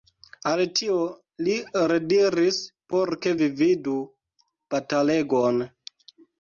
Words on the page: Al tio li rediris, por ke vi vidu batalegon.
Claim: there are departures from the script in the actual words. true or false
false